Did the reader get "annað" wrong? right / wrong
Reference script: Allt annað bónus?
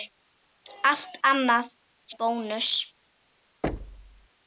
right